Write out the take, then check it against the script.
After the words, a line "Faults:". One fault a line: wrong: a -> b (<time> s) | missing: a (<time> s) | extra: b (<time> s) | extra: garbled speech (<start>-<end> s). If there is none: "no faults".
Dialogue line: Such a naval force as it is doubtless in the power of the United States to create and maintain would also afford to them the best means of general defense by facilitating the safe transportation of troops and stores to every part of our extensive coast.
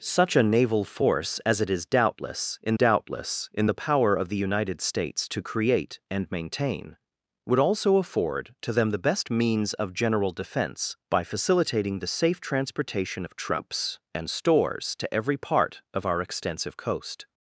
Such a naval force as it is doubtless in doubtless in the power of the United States to create and maintain would also afford to them the best means of general defense by facilitating the safe transportation of troops and stores to every part of our extensive coast.
Faults:
extra: doubtless in (2.7 s)